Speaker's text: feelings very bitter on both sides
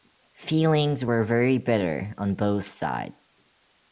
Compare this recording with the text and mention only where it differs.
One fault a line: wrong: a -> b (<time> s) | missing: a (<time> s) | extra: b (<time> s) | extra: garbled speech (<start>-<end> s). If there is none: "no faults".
extra: were (1.0 s)